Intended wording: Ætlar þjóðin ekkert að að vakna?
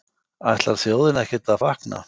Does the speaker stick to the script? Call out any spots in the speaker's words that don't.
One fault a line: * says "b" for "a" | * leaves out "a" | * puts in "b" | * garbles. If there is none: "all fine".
all fine